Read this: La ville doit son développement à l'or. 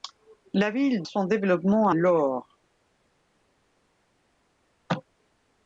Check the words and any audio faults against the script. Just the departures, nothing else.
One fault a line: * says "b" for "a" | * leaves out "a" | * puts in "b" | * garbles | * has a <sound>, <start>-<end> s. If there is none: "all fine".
* leaves out "doit"
* leaves out "à"